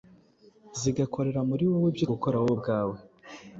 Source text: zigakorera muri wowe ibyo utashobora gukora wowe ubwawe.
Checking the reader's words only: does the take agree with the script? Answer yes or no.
no